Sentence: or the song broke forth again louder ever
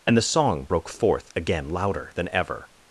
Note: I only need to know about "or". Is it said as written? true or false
false